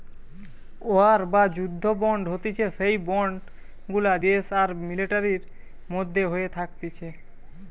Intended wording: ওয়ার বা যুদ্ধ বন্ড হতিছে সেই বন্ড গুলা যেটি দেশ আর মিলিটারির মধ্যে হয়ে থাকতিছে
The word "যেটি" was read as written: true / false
false